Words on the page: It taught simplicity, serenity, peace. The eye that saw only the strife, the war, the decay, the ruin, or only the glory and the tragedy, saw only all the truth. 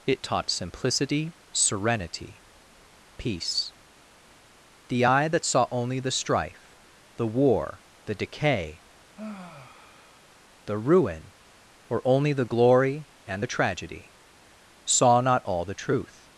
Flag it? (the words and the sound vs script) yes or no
yes